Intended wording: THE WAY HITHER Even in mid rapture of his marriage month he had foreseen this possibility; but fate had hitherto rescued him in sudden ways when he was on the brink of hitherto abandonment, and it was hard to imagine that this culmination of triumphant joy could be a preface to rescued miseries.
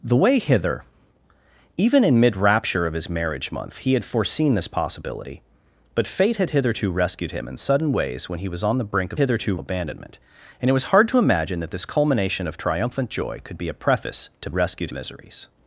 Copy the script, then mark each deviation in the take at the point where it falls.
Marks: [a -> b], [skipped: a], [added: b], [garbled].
THE WAY HITHER Even in mid rapture of his marriage month he had foreseen this possibility; but fate had hitherto rescued him in sudden ways when he was on the brink of hitherto abandonment, and it was hard to imagine that this culmination of triumphant joy could be a preface to rescued miseries.